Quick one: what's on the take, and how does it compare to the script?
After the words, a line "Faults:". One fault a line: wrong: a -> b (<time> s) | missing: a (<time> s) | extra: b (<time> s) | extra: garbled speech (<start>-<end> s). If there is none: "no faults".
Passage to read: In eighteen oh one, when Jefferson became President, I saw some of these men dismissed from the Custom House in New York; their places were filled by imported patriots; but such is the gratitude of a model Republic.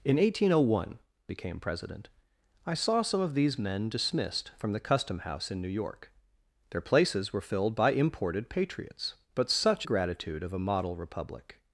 In eighteen oh one, became President, I saw some of these men dismissed from the Custom House in New York; their places were filled by imported patriots; but such the gratitude of a model Republic.
Faults:
missing: when Jefferson (1.0 s)
missing: is (9.9 s)